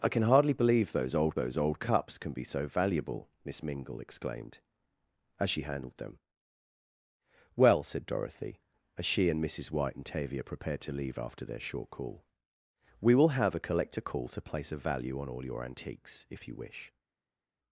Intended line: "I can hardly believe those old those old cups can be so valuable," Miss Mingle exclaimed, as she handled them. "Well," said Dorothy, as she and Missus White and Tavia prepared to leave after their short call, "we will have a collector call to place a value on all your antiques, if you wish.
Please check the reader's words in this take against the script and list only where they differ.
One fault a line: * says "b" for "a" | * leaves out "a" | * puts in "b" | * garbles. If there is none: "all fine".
all fine